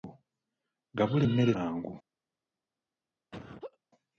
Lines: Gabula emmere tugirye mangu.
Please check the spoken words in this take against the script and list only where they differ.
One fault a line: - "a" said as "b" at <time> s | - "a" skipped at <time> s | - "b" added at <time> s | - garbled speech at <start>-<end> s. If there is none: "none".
- "tugirye" skipped at 1.5 s